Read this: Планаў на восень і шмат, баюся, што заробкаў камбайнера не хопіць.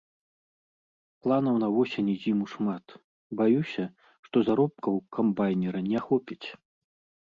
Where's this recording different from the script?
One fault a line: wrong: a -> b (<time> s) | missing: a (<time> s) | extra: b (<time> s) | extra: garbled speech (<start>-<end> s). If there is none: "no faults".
extra: зіму (2.2 s)